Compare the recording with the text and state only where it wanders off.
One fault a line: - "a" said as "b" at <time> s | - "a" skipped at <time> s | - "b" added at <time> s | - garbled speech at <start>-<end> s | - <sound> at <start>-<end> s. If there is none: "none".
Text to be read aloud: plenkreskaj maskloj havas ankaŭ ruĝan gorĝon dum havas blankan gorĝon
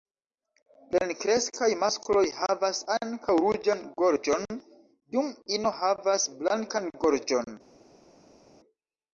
- "ino" added at 5.6 s